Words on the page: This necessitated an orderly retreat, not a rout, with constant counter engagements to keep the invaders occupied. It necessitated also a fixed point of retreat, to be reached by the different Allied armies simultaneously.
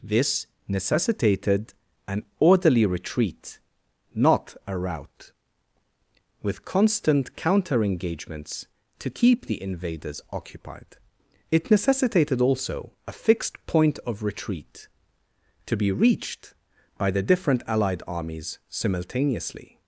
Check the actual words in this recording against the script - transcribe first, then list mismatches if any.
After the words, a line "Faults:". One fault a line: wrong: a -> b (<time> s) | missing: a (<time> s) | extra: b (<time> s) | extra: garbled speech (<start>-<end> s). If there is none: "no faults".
This necessitated an orderly retreat, not a rout, with constant counter engagements to keep the invaders occupied. It necessitated also a fixed point of retreat, to be reached by the different Allied armies simultaneously.
Faults:
no faults